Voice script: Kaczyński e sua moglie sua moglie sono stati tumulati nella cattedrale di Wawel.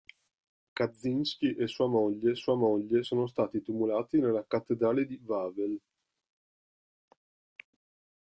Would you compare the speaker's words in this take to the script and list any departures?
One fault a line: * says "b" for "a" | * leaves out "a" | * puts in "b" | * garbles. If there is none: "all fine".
all fine